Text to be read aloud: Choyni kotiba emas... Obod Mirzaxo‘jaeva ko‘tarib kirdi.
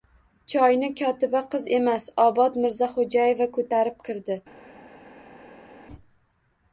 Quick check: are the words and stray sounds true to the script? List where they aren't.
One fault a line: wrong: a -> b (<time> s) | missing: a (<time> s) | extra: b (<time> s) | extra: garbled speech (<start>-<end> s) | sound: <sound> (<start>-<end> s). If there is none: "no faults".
extra: qiz (1.5 s)